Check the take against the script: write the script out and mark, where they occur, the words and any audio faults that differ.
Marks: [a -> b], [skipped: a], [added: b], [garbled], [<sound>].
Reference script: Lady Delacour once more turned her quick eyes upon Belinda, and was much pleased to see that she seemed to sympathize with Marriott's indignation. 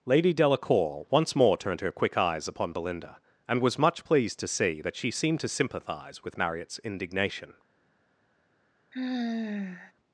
Lady Delacour once more turned her quick eyes upon Belinda, and was much pleased to see that she seemed to sympathize with Marriott's indignation. [sigh]